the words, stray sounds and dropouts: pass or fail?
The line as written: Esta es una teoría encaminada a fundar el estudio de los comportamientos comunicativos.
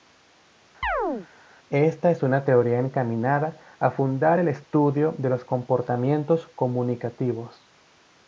fail